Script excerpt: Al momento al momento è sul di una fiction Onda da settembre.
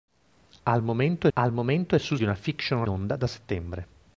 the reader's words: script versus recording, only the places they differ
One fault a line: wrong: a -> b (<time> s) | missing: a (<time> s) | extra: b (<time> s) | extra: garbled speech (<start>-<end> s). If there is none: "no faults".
no faults